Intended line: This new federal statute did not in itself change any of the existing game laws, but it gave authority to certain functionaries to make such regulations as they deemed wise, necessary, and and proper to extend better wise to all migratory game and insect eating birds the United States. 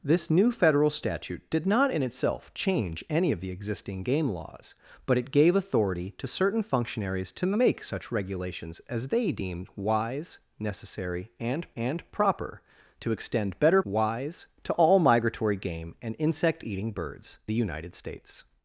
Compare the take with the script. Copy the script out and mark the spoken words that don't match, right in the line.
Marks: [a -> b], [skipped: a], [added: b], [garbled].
This new federal statute did not in itself change any of the existing game laws, but it gave authority to certain functionaries to make such regulations as they deemed wise, necessary, and and proper to extend better wise to all migratory game and insect eating birds the United States.